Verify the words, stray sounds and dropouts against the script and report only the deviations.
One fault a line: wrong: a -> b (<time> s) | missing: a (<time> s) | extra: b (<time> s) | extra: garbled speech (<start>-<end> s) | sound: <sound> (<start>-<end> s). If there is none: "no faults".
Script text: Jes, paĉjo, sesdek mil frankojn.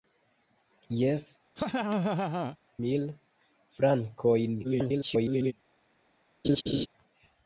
missing: paĉjo sesdek (1.2 s)
sound: laugh (1.6-2.6 s)
extra: garbled speech (4.6-5.5 s)
sound: laugh (6.4-6.9 s)